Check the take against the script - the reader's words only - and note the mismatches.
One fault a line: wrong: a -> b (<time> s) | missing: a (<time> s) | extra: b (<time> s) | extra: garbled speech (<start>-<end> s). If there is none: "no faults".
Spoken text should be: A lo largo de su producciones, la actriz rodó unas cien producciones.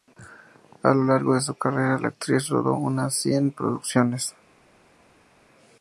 wrong: producciones -> carrera (1.5 s)